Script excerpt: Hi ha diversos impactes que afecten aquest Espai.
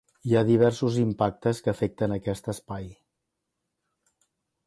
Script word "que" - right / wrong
right